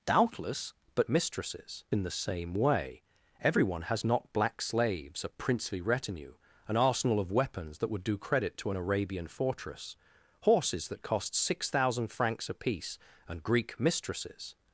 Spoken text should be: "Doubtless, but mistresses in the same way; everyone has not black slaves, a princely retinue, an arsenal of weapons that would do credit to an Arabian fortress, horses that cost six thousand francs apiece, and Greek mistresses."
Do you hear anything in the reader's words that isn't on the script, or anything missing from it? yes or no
no